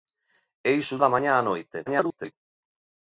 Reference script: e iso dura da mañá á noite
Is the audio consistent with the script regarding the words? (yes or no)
no